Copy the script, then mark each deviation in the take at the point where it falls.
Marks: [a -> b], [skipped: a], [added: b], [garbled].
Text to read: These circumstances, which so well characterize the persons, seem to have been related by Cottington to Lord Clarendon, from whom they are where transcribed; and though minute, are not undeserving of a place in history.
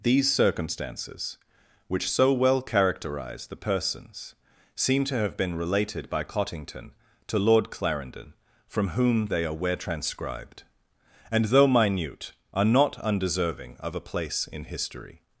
These circumstances, which so well characterize the persons, seem to have been related by Cottington to Lord Clarendon, from whom they are where transcribed; and though minute, are not undeserving of a place in history.